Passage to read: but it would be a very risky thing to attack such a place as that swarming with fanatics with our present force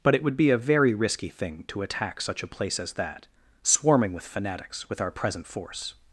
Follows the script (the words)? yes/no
yes